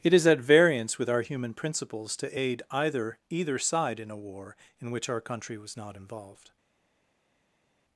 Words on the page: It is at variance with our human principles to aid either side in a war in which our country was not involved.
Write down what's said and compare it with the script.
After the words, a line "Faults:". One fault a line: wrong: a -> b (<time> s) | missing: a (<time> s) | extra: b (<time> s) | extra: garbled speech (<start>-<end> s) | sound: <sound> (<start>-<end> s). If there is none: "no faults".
It is at variance with our human principles to aid either either side in a war in which our country was not involved.
Faults:
extra: either (3.3 s)